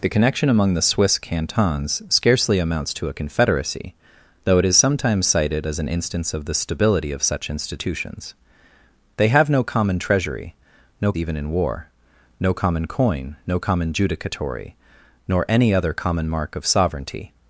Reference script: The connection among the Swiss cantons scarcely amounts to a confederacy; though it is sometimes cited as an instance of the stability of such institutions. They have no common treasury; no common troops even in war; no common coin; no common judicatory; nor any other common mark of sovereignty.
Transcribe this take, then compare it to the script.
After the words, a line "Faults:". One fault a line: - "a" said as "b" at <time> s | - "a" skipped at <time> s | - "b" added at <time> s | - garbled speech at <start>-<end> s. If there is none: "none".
The connection among the Swiss cantons scarcely amounts to a confederacy; though it is sometimes cited as an instance of the stability of such institutions. They have no common treasury; no even in war; no common coin; no common judicatory; nor any other common mark of sovereignty.
Faults:
- "common troops" skipped at 11.1 s